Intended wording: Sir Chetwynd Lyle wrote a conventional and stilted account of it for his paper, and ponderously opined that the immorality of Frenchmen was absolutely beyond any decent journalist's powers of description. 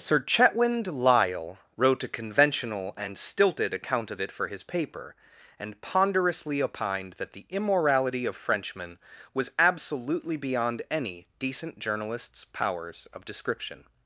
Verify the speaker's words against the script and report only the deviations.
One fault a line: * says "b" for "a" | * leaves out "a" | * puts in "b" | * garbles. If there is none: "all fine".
all fine